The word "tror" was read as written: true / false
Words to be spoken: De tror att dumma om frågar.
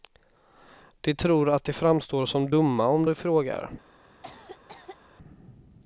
true